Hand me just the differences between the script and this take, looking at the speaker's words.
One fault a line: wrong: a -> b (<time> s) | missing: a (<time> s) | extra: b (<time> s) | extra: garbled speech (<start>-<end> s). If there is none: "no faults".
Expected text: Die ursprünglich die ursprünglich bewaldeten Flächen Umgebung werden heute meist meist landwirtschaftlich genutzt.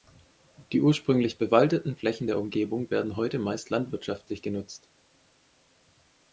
missing: die ursprünglich (1.4 s)
extra: der (2.3 s)
missing: meist (3.7 s)